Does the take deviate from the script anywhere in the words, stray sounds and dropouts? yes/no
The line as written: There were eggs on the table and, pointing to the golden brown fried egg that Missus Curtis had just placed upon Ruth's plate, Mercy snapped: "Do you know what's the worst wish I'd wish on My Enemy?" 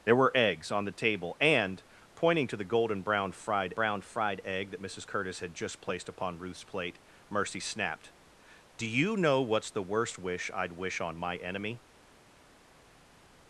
yes